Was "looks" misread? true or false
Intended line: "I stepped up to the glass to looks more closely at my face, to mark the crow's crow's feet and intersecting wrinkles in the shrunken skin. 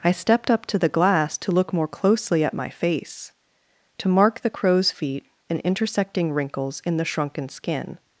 true